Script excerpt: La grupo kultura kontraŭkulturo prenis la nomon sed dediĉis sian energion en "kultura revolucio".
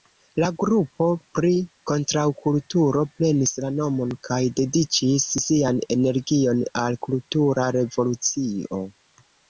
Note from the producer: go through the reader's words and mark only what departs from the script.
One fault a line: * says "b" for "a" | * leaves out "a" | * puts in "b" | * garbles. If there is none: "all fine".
* says "pri" for "kultura"
* says "kaj" for "sed"
* says "al" for "en"